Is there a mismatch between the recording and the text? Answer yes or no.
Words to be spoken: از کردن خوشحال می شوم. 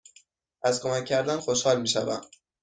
yes